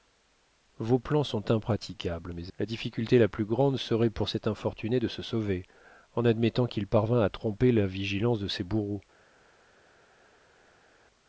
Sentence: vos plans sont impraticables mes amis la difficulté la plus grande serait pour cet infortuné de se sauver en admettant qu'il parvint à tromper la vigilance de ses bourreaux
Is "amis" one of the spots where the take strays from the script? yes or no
yes